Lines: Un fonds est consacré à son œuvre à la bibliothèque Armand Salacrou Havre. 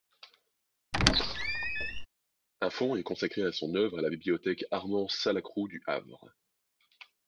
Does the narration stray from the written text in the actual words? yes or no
yes